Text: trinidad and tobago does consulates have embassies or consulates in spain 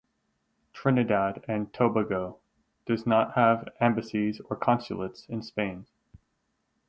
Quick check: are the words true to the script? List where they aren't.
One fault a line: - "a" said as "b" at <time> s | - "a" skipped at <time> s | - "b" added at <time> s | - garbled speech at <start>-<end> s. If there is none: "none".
- "consulates" said as "not" at 3.1 s